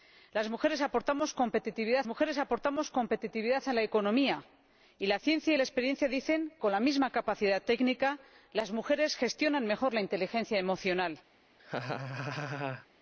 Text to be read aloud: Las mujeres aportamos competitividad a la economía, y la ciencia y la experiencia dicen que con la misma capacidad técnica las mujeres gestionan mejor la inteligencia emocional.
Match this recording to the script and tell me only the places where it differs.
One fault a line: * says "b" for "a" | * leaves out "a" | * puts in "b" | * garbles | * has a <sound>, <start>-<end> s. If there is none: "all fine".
* puts in "mujeres aportamos competitividad"
* leaves out "que"
* has a laugh, 11.6-12.9 s